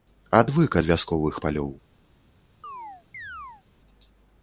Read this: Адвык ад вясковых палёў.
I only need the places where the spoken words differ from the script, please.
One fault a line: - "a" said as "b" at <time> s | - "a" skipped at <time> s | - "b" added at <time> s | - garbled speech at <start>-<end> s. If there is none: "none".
none